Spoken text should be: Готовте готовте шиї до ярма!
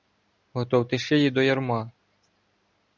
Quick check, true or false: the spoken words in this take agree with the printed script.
false